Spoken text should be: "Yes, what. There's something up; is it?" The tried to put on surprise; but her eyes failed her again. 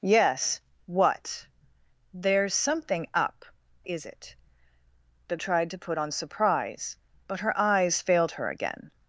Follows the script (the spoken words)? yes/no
yes